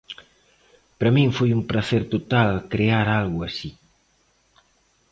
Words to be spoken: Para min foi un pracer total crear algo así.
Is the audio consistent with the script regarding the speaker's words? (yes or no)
yes